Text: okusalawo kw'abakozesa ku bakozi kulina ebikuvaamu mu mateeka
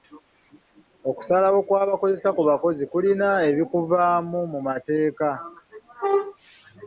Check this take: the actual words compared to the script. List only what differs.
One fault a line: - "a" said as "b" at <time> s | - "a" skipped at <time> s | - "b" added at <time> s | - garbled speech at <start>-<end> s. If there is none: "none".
none